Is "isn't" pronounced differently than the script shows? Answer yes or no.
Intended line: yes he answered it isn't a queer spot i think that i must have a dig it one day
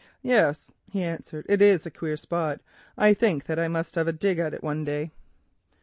yes